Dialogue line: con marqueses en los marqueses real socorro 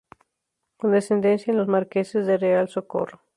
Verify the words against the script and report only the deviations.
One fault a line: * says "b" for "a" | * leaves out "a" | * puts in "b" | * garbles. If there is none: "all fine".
* says "descendencia" for "marqueses"
* puts in "de"